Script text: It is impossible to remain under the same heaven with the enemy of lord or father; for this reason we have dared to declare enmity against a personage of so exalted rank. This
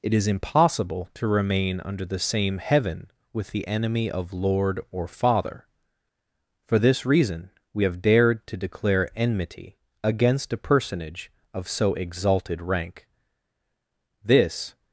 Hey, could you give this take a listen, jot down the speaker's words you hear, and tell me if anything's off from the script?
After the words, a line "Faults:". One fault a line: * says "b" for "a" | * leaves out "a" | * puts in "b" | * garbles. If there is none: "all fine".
It is impossible to remain under the same heaven with the enemy of lord or father; for this reason we have dared to declare enmity against a personage of so exalted rank. This
Faults:
all fine